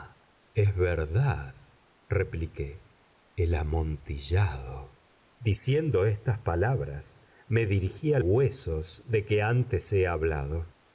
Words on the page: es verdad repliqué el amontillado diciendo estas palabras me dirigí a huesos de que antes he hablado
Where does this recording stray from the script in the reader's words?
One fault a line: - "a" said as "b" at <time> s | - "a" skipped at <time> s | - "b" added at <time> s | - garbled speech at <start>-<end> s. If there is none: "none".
none